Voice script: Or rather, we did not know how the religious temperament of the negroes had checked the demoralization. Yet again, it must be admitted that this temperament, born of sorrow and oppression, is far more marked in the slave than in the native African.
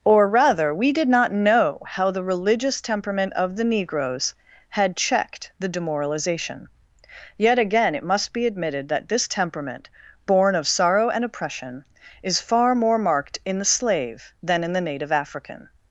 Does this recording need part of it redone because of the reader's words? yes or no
no